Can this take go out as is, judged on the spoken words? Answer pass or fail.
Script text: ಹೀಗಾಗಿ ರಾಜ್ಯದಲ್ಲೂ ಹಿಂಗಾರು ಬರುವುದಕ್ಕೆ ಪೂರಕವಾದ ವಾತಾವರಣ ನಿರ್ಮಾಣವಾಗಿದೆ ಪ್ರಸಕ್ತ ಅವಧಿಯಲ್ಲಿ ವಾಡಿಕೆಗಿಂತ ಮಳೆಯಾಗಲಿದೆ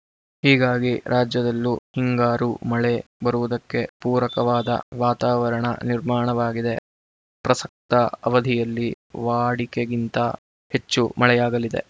fail